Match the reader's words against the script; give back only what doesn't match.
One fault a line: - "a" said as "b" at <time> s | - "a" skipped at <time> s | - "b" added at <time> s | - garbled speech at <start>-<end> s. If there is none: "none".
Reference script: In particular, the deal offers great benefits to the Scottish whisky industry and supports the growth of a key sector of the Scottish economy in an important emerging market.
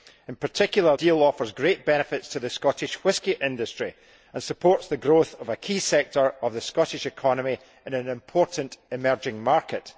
- "the" skipped at 1.0 s